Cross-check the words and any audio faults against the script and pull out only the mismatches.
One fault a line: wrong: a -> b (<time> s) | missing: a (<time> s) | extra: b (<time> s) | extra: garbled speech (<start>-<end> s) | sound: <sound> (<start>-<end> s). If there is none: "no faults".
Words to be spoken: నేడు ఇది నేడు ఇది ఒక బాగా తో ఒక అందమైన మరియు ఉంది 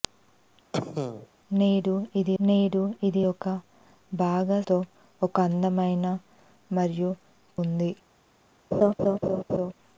sound: cough (0.7-1.3 s)
sound: laugh (8.7-9.7 s)